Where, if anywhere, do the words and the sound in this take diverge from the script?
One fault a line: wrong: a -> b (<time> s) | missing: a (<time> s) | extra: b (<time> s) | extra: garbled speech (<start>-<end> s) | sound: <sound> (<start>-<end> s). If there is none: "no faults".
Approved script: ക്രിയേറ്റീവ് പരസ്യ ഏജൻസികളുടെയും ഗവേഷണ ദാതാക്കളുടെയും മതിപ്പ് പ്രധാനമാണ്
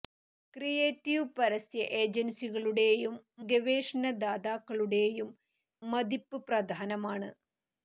no faults